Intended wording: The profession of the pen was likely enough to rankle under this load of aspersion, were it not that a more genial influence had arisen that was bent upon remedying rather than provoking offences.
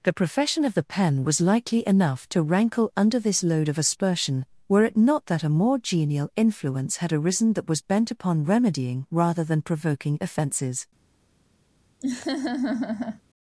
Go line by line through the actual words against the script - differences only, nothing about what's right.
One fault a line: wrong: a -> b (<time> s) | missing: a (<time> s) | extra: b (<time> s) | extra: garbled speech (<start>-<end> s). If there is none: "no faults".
no faults